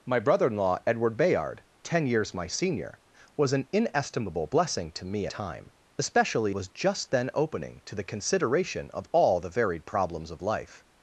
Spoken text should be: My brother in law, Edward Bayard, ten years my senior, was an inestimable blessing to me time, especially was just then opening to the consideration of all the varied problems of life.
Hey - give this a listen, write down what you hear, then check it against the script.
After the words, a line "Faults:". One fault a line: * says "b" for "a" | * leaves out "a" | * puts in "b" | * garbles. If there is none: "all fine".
My brother in law, Edward Bayard, ten years my senior, was an inestimable blessing to me time, especially was just then opening to the consideration of all the varied problems of life.
Faults:
all fine